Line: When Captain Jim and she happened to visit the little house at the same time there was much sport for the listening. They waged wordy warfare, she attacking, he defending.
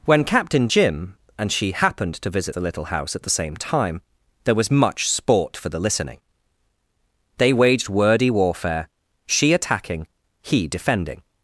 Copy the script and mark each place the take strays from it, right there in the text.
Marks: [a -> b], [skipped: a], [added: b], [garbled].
When Captain Jim and she happened to visit the little house at the same time there was much sport for the listening. They waged wordy warfare, she attacking, he defending.